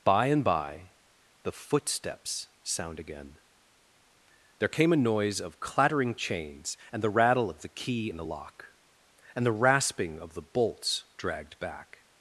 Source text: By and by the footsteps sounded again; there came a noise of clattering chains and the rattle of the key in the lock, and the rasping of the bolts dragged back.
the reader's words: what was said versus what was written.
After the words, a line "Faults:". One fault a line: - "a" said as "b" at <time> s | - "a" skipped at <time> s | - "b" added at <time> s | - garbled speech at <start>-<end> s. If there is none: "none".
By and by the footsteps sound again; there came a noise of clattering chains and the rattle of the key in the lock, and the rasping of the bolts dragged back.
Faults:
- "sounded" said as "sound" at 2.6 s